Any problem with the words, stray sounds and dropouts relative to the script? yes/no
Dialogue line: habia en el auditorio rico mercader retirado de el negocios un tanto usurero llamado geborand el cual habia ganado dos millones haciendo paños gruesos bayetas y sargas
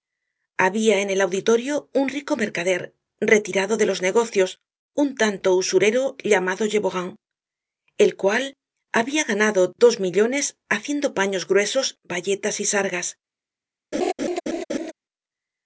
yes